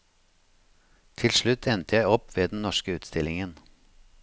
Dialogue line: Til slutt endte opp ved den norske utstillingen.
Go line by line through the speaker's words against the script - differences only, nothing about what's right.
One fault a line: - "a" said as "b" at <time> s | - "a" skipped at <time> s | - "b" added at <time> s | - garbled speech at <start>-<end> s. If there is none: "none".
- "jeg" added at 2.0 s